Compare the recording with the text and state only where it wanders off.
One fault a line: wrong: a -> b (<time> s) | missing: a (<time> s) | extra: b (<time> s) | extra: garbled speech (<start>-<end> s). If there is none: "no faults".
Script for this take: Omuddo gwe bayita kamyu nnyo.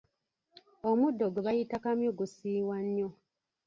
extra: gusiiwa (2.2 s)